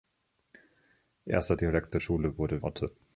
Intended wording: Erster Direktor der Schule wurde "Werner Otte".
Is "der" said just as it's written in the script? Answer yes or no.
no